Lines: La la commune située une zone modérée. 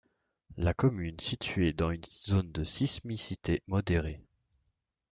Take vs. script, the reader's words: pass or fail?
fail